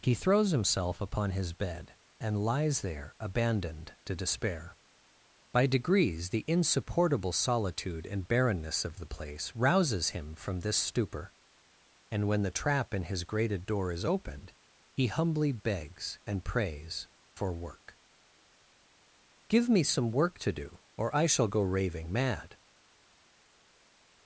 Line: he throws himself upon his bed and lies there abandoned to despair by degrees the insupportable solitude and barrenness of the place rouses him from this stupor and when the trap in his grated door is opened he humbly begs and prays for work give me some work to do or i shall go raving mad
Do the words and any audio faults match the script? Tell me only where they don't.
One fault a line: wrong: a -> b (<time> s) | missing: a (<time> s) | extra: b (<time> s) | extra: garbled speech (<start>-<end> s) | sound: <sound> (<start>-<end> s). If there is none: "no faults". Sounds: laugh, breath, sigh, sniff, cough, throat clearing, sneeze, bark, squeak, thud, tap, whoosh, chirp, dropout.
no faults